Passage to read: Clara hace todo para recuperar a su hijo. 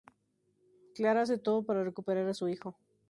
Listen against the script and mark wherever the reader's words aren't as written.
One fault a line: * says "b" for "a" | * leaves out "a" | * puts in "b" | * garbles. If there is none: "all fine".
all fine